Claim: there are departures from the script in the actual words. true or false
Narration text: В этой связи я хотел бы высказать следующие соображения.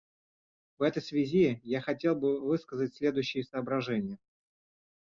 false